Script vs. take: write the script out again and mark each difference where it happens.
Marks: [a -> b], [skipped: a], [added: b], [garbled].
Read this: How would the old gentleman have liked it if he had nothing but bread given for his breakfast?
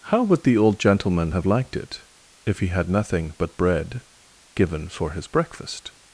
How would the old gentleman have liked it if he had nothing but bread given for his breakfast?